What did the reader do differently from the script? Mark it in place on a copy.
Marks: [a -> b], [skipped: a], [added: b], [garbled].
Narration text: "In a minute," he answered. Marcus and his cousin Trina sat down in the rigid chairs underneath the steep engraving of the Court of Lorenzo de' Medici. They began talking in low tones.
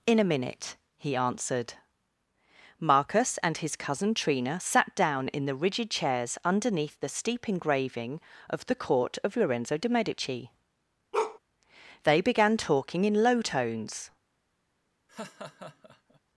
"In a minute," he answered. Marcus and his cousin Trina sat down in the rigid chairs underneath the steep engraving of the Court of Lorenzo de' Medici. They began talking in low tones.